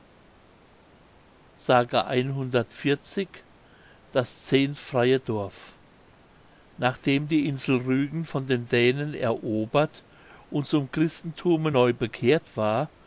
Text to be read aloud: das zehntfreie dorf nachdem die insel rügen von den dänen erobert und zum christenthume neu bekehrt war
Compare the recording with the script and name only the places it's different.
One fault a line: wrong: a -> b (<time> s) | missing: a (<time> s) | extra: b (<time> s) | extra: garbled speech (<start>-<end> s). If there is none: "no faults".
no faults